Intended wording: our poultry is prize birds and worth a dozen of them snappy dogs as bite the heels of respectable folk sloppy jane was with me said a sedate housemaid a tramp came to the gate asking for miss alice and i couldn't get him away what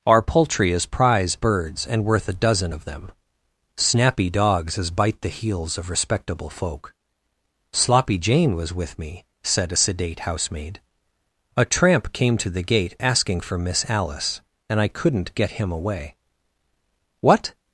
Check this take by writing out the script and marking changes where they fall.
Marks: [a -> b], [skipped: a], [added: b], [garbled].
our poultry is prize birds and worth a dozen of them snappy dogs as bite the heels of respectable folk sloppy jane was with me said a sedate housemaid a tramp came to the gate asking for miss alice and i couldn't get him away what